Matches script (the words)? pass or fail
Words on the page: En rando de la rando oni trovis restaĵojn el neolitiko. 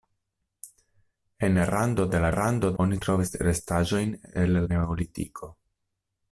pass